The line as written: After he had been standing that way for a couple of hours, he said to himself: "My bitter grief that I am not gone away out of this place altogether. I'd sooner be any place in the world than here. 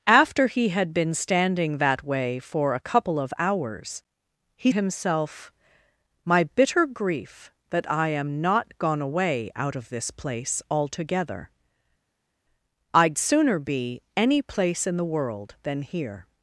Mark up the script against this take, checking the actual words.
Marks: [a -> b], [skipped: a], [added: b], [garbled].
After he had been standing that way for a couple of hours, he [skipped: said to] himself: "My bitter grief that I am not gone away out of this place altogether. I'd sooner be any place in the world than here.